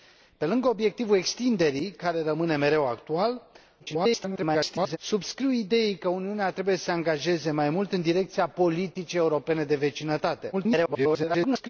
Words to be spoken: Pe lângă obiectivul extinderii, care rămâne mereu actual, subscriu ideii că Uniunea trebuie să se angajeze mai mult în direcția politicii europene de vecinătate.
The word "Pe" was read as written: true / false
true